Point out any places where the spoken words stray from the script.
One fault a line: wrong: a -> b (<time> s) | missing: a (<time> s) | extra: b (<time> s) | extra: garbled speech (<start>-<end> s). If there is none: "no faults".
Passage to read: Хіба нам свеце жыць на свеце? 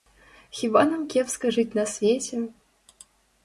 wrong: свеце -> кепска (1.1 s)